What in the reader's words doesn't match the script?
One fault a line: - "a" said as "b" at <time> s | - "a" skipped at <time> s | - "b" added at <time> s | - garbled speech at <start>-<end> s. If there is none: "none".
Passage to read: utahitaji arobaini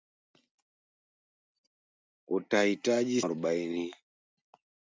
none